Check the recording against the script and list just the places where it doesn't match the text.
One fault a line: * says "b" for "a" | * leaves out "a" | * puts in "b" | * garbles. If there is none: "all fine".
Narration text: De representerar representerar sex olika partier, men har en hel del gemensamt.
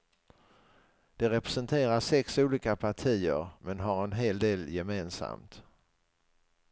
* leaves out "representerar"